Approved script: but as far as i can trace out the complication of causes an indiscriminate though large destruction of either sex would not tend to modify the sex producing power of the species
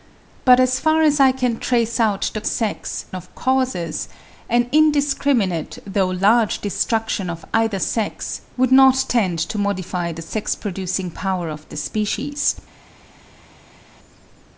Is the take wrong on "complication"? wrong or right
wrong